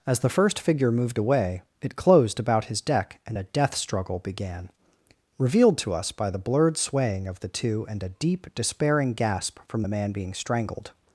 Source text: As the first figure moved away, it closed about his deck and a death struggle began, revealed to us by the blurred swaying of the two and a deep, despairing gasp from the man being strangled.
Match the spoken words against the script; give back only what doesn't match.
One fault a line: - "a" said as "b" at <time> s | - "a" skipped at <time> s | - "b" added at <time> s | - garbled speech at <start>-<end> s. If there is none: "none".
none